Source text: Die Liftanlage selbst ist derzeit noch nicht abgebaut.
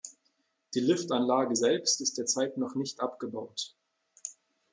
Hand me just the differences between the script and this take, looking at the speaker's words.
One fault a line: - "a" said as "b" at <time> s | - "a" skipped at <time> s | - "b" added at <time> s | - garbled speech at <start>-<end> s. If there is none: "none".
none